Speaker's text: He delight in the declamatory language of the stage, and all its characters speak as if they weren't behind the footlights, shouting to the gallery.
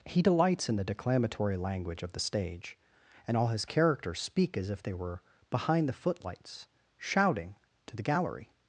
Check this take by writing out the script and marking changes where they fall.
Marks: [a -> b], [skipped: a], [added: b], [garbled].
He [delight -> delights] in the declamatory language of the stage, and all [its -> his] characters speak as if they [weren't -> were] behind the footlights, shouting to the gallery.